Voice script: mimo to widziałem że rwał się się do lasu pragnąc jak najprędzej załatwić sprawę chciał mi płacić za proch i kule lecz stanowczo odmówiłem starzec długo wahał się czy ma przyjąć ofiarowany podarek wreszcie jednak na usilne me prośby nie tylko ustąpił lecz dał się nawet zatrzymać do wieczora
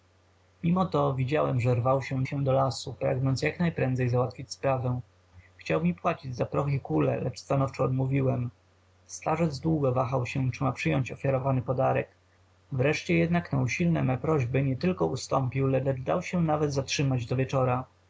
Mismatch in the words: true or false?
false